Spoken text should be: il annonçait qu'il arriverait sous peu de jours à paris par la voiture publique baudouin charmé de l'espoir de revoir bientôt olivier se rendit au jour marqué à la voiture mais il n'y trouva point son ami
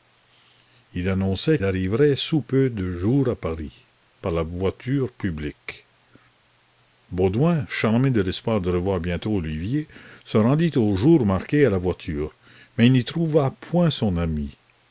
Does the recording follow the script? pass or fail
fail